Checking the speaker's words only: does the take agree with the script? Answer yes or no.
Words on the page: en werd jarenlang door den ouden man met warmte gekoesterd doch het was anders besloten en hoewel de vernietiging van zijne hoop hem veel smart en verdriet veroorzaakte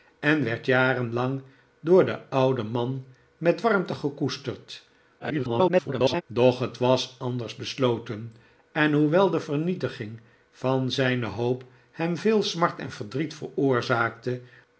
no